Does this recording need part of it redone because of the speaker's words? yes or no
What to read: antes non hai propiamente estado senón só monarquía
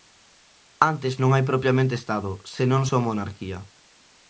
no